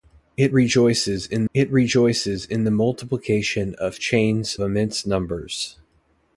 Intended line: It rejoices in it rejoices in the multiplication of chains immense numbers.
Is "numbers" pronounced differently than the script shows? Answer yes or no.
no